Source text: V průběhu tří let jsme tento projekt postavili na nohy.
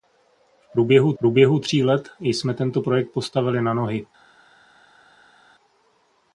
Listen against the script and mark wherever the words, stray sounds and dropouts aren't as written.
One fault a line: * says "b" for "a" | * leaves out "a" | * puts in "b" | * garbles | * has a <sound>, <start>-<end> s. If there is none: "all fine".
* puts in "průběhu"